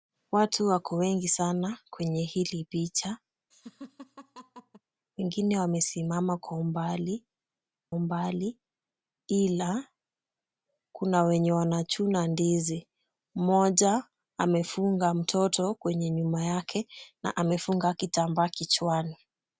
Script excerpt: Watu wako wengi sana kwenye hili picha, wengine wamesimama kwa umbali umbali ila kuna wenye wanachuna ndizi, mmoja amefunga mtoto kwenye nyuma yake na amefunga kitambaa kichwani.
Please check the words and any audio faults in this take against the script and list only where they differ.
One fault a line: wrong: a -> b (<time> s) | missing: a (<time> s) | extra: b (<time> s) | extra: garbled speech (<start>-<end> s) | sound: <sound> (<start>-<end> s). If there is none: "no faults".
sound: laugh (3.5-4.8 s)